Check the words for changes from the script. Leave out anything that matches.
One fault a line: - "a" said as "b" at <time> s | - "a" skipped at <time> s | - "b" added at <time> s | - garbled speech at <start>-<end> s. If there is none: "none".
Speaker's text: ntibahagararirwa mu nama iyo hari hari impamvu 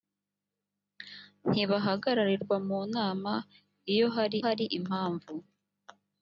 none